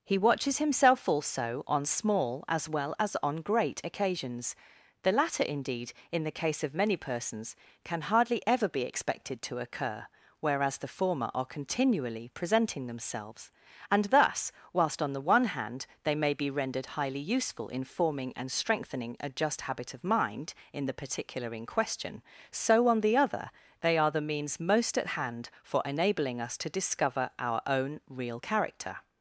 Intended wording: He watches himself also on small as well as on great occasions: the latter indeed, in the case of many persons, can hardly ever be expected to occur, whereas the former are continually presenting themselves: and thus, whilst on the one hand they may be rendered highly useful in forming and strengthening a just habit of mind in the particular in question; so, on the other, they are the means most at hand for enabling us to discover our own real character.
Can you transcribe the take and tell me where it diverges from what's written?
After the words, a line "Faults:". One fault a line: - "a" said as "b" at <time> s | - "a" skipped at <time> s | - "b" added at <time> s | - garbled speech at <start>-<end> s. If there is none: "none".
He watches himself also on small as well as on great occasions: the latter indeed, in the case of many persons, can hardly ever be expected to occur, whereas the former are continually presenting themselves: and thus, whilst on the one hand they may be rendered highly useful in forming and strengthening a just habit of mind in the particular in question; so, on the other, they are the means most at hand for enabling us to discover our own real character.
Faults:
none